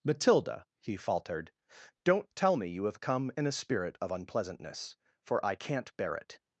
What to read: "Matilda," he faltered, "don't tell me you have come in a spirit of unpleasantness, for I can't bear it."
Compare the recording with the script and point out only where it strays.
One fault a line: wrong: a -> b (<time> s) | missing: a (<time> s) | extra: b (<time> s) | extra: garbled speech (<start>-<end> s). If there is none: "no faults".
no faults